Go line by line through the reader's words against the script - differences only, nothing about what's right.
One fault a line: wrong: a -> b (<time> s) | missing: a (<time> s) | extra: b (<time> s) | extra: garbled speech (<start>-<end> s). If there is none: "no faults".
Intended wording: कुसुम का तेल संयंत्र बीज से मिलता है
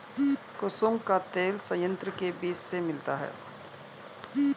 extra: के (2.2 s)